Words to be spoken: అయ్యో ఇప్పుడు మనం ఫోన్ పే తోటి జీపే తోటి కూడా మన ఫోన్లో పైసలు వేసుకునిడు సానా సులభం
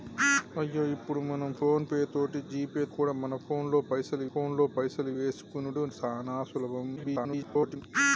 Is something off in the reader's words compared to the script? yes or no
yes